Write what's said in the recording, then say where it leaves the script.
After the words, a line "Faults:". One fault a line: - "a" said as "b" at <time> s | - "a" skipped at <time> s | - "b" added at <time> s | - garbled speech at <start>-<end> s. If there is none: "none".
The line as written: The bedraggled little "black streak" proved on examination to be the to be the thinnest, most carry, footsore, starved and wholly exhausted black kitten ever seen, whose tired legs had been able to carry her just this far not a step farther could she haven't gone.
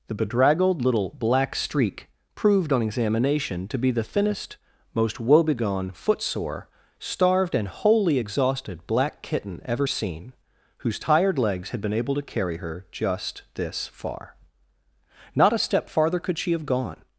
The bedraggled little "black streak" proved on examination to be the thinnest, most woebegone, footsore, starved and wholly exhausted black kitten ever seen, whose tired legs had been able to carry her just this far not a step farther could she have gone.
Faults:
- "to be the" skipped at 4.0 s
- "carry" said as "woebegone" at 5.2 s
- "haven't" said as "have" at 16.5 s